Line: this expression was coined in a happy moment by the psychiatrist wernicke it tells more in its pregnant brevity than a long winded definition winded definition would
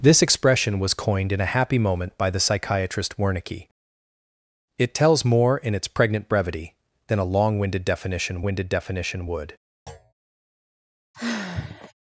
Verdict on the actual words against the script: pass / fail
pass